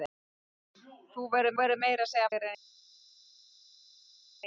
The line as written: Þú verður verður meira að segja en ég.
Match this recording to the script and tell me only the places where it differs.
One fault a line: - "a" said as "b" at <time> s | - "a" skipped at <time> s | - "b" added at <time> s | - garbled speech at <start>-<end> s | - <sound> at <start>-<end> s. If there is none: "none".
none